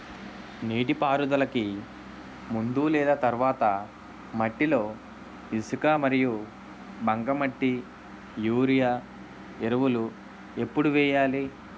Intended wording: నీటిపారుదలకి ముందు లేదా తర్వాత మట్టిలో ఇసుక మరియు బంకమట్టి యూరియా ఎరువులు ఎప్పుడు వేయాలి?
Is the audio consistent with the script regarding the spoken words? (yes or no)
yes